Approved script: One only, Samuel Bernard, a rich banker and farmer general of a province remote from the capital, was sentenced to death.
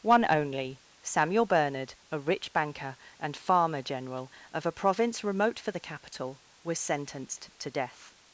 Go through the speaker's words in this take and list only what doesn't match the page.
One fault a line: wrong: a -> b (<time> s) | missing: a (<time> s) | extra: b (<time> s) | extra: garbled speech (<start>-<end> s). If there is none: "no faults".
wrong: from -> for (5.6 s)